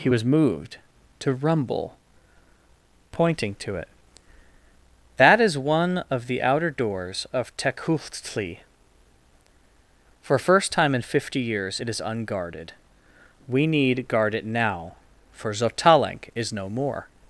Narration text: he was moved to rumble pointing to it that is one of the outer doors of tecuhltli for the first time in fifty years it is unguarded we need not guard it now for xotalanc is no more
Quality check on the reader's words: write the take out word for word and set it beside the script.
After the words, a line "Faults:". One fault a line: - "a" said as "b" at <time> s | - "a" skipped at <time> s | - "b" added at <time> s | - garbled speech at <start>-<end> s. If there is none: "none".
he was moved to rumble pointing to it that is one of the outer doors of tecuhltli for first time in fifty years it is unguarded we need guard it now for xotalanc is no more
Faults:
- "the" skipped at 10.4 s
- "not" skipped at 14.1 s